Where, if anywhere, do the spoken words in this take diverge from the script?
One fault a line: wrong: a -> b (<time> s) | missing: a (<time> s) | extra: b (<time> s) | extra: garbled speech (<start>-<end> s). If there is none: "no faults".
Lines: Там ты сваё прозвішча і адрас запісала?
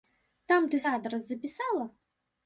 missing: сваё прозвішча (0.8 s)